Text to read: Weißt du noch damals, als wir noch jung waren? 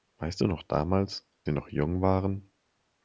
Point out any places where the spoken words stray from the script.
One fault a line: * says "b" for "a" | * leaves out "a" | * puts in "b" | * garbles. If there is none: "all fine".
* leaves out "als"